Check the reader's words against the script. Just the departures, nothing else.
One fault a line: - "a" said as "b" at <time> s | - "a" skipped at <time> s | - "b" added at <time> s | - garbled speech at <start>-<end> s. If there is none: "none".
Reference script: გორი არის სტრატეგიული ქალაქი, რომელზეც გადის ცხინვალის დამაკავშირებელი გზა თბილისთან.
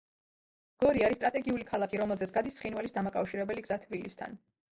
none